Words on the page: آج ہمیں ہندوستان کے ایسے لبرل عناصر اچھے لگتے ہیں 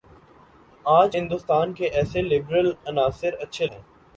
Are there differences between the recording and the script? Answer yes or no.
yes